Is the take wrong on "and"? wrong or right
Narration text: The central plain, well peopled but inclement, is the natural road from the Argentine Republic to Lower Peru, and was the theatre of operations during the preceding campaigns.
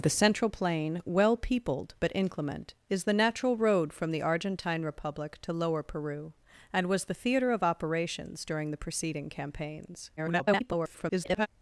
right